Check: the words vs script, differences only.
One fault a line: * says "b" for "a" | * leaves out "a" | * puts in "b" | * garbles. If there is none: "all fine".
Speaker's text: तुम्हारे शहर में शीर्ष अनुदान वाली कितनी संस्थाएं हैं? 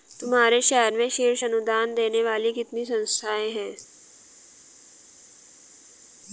* puts in "देने"